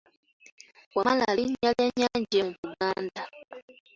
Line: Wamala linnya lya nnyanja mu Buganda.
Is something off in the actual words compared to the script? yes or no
no